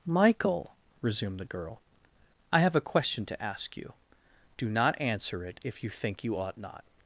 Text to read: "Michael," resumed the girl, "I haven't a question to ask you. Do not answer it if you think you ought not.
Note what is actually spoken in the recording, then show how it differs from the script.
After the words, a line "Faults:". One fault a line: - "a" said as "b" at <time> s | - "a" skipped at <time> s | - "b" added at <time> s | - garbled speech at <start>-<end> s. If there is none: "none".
"Michael," resumed the girl, "I have a question to ask you. Do not answer it if you think you ought not.
Faults:
- "haven't" said as "have" at 2.6 s